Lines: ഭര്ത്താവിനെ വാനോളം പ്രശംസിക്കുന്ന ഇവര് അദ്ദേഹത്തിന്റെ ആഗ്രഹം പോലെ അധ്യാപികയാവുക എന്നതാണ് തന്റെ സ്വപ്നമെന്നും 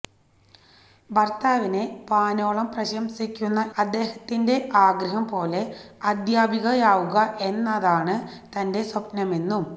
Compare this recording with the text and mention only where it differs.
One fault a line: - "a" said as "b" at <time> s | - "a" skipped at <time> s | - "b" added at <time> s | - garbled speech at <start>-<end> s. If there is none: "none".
- "ഇവര്" skipped at 3.6 s